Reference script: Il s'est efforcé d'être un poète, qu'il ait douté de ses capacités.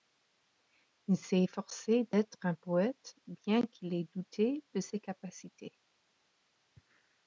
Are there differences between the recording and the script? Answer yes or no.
yes